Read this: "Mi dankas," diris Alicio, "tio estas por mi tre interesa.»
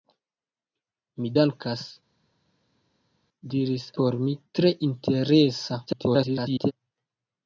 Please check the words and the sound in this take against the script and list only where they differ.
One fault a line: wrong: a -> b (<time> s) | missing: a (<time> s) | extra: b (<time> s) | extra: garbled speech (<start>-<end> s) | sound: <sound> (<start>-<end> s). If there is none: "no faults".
missing: Alicio tio estas (3.9 s)
extra: garbled speech (5.9-6.7 s)